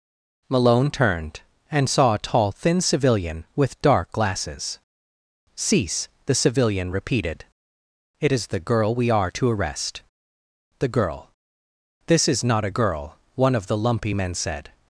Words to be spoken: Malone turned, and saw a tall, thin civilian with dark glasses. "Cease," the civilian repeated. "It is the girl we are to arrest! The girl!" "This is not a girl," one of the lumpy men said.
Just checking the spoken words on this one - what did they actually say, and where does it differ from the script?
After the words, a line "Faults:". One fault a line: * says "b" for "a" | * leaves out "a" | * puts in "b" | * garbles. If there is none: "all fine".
Malone turned, and saw a tall, thin civilian with dark glasses. "Cease," the civilian repeated. "It is the girl we are to arrest! The girl!" "This is not a girl," one of the lumpy men said.
Faults:
all fine